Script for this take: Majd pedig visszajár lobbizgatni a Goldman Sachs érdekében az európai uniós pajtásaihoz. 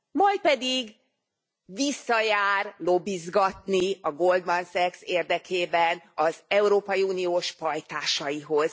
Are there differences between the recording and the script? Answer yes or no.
no